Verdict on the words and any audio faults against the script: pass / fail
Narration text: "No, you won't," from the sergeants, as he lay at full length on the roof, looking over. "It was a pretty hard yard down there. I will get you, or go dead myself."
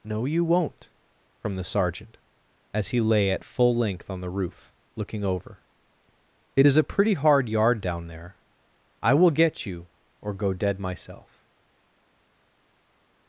fail